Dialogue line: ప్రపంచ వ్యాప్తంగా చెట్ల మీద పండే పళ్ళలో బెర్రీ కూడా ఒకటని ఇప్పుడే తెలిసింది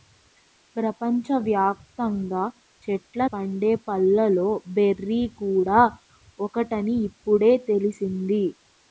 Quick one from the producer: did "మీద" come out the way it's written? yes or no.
no